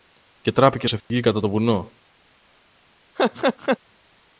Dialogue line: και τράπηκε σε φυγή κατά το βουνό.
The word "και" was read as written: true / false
true